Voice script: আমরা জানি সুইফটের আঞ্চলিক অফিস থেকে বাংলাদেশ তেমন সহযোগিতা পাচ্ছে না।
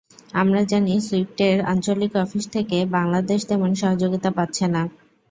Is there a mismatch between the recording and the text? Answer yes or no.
no